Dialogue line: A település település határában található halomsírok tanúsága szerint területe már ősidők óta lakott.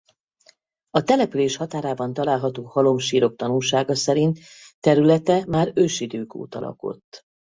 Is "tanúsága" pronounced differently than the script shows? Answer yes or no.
no